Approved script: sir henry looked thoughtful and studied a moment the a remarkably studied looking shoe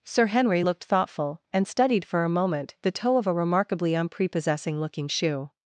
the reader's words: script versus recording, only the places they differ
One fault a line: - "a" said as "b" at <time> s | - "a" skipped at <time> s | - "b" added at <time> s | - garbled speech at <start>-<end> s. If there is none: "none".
- "for" added at 2.0 s
- "toe of" added at 2.9 s
- "studied" said as "unprepossessing" at 3.9 s